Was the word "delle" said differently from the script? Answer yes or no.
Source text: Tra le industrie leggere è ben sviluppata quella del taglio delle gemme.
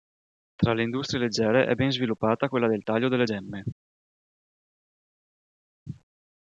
no